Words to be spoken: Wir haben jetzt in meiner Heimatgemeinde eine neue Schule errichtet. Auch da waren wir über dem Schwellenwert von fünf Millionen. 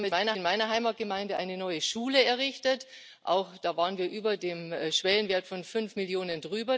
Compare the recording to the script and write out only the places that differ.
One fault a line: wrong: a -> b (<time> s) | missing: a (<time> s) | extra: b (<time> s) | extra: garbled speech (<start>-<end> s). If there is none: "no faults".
wrong: jetzt -> meiner (0.1 s)